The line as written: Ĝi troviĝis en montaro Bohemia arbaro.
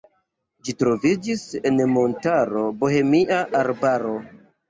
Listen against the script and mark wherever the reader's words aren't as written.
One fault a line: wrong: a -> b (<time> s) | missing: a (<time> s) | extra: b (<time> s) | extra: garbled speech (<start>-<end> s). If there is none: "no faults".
no faults